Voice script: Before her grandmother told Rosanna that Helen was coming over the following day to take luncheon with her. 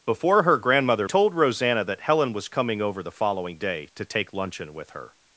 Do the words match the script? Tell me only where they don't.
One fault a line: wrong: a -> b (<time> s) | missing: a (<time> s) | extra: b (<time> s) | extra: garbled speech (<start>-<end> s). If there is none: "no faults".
no faults